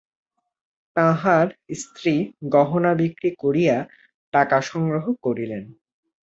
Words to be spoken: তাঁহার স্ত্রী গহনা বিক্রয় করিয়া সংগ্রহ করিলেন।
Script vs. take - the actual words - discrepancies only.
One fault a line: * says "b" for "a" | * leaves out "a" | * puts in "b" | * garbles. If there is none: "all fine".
* puts in "টাকা"